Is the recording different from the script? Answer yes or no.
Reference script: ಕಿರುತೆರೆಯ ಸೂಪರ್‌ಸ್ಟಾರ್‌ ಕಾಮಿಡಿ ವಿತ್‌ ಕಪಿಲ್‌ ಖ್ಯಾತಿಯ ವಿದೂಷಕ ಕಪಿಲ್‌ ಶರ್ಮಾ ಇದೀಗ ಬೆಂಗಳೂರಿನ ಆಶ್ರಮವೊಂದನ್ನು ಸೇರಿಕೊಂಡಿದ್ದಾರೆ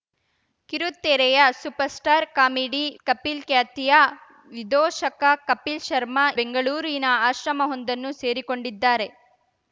yes